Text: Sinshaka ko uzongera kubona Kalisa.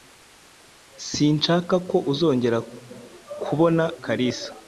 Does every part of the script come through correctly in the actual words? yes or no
yes